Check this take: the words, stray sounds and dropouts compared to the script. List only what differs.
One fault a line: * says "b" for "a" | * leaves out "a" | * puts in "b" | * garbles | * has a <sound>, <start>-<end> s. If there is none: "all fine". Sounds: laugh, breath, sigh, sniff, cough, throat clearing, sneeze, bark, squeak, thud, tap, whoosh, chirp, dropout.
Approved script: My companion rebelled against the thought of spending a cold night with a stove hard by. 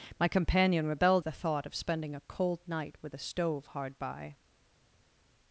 * leaves out "against"